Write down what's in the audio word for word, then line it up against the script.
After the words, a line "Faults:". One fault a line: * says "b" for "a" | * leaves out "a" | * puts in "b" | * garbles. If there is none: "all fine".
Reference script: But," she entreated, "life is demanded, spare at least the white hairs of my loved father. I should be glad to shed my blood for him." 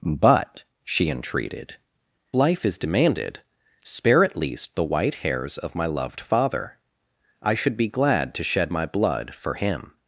But," she entreated, "life is demanded, spare at least the white hairs of my loved father. I should be glad to shed my blood for him."
Faults:
all fine